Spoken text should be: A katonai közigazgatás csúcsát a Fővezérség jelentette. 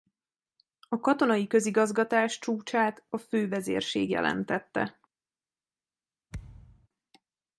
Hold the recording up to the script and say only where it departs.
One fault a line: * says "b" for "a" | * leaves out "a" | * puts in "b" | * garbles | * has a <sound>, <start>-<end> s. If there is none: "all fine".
* has a thud, 6.3-6.9 s